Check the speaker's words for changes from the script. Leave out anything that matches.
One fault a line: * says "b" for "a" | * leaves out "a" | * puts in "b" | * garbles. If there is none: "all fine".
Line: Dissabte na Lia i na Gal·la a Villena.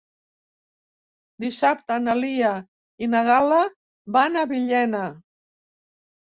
* puts in "van"